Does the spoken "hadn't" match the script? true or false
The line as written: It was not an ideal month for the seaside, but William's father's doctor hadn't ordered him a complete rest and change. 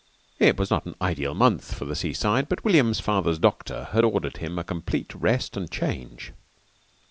false